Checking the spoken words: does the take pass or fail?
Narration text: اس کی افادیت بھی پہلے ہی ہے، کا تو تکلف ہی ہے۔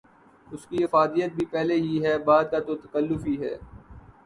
fail